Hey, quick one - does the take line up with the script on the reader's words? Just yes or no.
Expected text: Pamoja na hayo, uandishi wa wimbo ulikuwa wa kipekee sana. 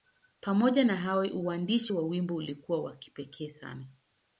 yes